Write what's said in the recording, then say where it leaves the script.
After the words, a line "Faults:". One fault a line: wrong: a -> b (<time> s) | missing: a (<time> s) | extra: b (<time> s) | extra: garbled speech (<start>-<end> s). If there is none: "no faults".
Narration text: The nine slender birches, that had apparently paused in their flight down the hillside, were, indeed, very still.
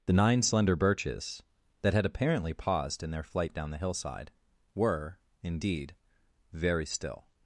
The nine slender birches, that had apparently paused in their flight down the hillside, were, indeed, very still.
Faults:
no faults